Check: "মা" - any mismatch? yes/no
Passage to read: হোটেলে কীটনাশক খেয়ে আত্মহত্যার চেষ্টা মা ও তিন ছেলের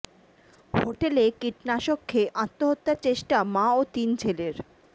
no